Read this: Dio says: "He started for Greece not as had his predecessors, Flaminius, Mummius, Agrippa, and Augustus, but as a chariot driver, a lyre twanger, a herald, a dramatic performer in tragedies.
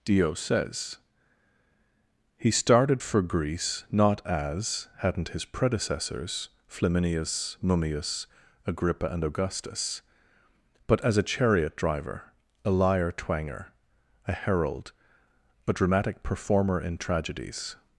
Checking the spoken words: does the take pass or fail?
fail